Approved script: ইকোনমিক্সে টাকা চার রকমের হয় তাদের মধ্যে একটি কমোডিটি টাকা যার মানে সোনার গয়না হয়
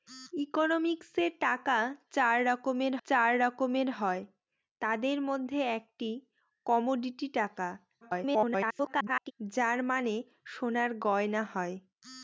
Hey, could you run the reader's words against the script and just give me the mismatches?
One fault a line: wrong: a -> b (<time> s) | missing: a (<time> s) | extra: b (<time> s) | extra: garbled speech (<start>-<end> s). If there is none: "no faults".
extra: চার রকমের (3.0 s)
extra: garbled speech (8.0-9.3 s)